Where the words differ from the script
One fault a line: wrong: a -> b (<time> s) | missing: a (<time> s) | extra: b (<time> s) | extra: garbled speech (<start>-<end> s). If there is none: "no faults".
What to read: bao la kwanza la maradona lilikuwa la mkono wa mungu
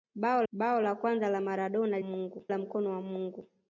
extra: bao (0.5 s)
wrong: lilikuwa -> mungu (2.0 s)